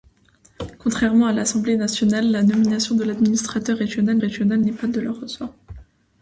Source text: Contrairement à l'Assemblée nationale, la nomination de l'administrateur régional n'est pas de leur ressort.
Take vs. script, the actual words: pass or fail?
fail